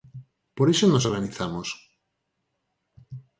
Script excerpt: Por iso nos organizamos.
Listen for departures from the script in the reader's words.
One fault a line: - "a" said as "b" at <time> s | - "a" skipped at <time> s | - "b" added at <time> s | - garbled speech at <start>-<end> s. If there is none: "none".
none